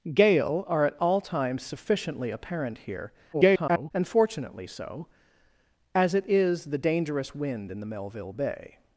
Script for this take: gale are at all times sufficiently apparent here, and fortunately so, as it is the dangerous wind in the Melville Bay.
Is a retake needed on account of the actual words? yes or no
yes